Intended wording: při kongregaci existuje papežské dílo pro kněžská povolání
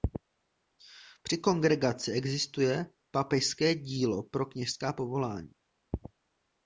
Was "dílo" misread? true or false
false